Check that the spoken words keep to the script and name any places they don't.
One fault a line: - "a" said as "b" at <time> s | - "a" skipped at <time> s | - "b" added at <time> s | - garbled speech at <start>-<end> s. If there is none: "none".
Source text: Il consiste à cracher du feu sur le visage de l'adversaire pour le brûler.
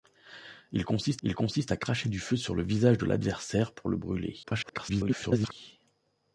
- "il consiste" added at 1.2 s
- garbled speech at 4.4-5.5 s